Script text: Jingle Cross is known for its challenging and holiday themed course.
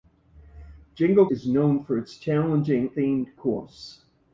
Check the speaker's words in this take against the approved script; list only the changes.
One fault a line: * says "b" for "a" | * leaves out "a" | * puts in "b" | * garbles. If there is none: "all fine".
* leaves out "Cross"
* leaves out "and holiday"